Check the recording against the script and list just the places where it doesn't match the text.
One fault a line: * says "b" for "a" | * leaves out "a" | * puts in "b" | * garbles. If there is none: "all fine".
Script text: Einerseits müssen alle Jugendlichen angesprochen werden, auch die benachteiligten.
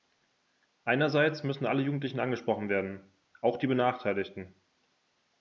all fine